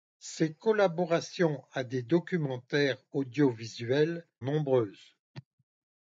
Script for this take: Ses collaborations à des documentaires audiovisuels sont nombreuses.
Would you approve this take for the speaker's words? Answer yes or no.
no